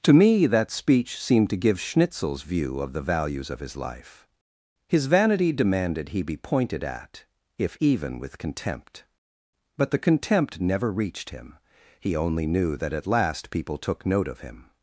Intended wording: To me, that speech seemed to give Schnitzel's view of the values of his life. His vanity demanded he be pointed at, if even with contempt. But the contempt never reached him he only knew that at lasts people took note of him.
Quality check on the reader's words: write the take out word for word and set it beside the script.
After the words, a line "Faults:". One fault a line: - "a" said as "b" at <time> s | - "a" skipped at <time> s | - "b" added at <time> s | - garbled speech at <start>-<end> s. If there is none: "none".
To me, that speech seemed to give Schnitzel's view of the values of his life. His vanity demanded he be pointed at, if even with contempt. But the contempt never reached him he only knew that at last people took note of him.
Faults:
- "lasts" said as "last" at 13.0 s